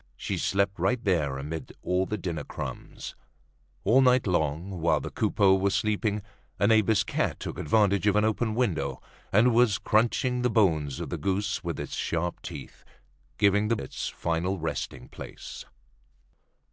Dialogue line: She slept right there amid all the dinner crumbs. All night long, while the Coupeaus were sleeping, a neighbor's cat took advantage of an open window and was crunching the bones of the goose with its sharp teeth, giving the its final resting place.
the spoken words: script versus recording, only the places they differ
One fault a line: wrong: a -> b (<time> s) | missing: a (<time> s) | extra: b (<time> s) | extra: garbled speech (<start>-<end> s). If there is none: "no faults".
no faults